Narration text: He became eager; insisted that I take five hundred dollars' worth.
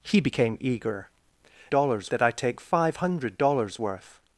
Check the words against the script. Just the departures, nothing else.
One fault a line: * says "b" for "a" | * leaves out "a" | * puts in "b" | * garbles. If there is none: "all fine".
* says "dollars" for "insisted"